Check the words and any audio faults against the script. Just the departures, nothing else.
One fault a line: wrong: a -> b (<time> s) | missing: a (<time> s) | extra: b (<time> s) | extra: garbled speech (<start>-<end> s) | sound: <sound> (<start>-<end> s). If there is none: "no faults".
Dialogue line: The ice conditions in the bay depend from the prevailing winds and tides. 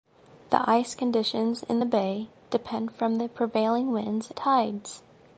missing: and (4.3 s)